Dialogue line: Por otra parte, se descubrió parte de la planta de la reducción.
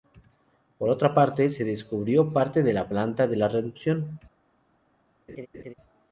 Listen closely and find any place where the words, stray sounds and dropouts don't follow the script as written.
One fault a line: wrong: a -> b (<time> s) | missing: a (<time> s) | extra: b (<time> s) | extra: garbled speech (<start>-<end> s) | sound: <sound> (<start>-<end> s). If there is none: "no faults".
sound: laugh (5.3-5.7 s)